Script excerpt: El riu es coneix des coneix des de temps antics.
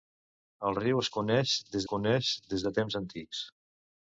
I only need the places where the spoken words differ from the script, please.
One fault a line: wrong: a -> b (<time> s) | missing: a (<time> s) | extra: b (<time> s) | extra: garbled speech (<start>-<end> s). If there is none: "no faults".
no faults